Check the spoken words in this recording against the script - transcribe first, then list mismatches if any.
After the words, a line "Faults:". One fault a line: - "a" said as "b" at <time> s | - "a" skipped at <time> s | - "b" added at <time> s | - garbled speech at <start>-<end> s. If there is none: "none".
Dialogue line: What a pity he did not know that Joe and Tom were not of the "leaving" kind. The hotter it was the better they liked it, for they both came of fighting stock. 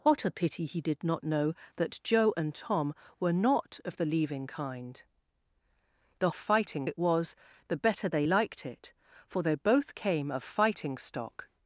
What a pity he did not know that Joe and Tom were not of the "leaving" kind. The fighting it was the better they liked it, for they both came of fighting stock.
Faults:
- "hotter" said as "fighting" at 6.3 s